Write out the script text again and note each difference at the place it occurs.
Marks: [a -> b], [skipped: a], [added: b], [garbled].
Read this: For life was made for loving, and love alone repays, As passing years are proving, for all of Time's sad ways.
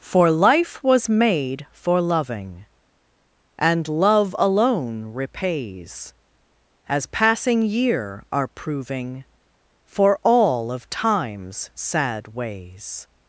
For life was made for loving, and love alone repays, As passing [years -> year] are proving, for all of Time's sad ways.